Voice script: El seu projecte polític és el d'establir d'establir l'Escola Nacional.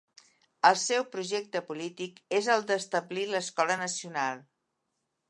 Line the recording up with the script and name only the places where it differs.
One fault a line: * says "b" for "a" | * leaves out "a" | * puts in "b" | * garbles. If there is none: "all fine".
* leaves out "d'establir"